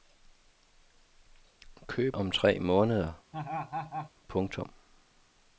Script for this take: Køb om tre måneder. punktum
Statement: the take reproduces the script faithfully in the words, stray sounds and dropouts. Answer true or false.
false